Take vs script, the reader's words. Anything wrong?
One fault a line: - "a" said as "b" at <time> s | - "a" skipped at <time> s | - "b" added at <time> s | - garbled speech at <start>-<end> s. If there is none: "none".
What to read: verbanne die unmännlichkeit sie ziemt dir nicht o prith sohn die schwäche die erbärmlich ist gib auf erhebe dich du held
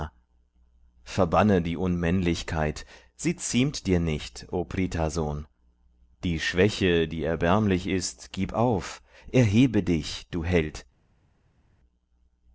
none